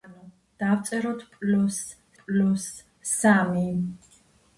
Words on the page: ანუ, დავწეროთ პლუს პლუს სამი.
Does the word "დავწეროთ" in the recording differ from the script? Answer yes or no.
no